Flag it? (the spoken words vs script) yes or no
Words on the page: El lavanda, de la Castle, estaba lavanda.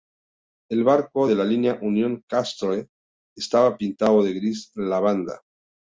yes